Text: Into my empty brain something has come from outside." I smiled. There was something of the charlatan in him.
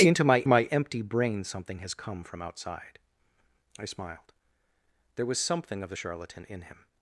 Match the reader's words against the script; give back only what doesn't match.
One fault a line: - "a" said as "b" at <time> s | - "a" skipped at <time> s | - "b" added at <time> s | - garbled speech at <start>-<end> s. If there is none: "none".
- "my" added at 0.5 s